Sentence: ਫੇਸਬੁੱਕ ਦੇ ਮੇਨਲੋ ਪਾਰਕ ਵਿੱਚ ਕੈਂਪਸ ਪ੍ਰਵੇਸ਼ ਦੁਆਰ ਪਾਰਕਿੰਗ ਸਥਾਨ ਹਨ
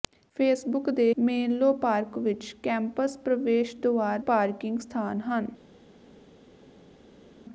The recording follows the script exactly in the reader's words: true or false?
true